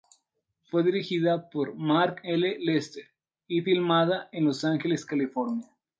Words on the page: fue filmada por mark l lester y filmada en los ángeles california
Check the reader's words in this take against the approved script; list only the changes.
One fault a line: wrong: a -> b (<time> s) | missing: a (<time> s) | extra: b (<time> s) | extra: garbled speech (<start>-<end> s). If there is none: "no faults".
wrong: filmada -> dirigida (0.8 s)